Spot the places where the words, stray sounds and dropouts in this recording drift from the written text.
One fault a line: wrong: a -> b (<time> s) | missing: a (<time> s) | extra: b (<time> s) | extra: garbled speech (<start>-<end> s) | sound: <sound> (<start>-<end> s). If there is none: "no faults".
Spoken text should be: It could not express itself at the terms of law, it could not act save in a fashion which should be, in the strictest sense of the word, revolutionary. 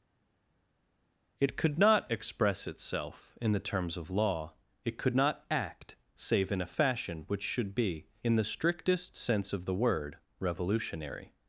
wrong: at -> in (3.4 s)